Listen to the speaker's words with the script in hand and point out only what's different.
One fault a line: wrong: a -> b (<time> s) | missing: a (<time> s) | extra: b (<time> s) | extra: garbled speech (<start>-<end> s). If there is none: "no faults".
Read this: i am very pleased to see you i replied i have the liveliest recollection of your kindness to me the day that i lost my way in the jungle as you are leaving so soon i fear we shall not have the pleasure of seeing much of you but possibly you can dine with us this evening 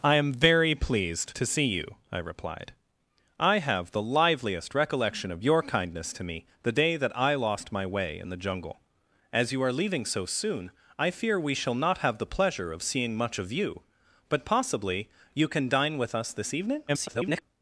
extra: garbled speech (16.9-17.4 s)